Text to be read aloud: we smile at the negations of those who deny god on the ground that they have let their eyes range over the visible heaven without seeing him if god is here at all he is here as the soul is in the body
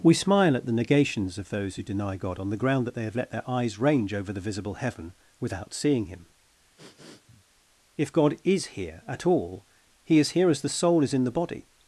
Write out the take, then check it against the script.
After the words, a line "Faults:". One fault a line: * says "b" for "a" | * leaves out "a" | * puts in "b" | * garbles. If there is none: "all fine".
we smile at the negations of those who deny god on the ground that they have let their eyes range over the visible heaven without seeing him if god is here at all he is here as the soul is in the body
Faults:
all fine